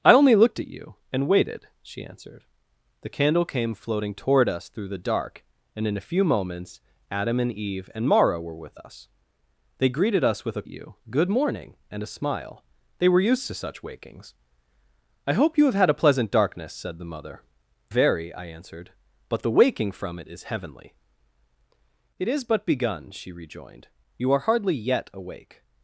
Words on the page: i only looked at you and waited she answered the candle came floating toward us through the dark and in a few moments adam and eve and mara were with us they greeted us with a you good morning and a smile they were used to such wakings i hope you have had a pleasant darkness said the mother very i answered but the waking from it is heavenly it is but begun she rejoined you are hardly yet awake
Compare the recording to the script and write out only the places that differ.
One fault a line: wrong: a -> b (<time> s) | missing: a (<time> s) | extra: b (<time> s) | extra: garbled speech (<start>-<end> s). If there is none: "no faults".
no faults